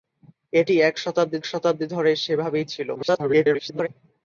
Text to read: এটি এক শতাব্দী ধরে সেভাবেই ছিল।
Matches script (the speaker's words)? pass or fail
fail